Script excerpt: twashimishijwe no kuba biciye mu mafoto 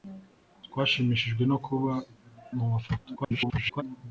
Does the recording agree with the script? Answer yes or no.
no